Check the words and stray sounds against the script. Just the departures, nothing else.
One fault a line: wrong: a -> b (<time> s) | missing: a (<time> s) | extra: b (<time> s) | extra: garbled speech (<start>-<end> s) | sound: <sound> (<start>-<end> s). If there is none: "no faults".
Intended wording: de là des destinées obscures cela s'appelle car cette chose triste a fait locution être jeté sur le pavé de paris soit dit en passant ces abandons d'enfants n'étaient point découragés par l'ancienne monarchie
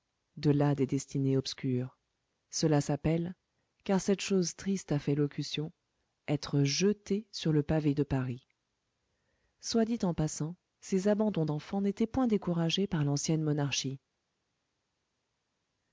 no faults